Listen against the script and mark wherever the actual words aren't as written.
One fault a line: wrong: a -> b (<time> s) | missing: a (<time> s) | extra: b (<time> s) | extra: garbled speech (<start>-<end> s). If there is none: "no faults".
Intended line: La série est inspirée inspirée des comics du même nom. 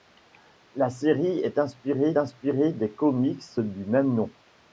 no faults